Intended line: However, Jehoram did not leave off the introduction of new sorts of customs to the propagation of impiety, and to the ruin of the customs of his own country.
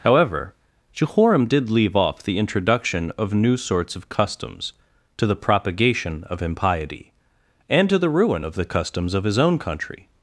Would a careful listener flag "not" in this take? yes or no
yes